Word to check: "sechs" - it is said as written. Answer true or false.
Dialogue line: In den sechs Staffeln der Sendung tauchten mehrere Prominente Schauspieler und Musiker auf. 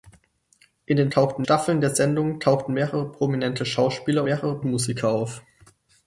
false